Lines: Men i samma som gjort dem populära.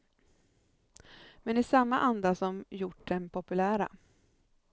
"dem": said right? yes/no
yes